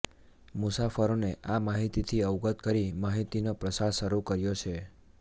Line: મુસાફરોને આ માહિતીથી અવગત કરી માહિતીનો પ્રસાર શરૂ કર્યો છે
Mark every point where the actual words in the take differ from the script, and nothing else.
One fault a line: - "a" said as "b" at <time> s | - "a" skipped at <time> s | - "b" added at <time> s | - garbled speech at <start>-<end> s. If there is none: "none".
none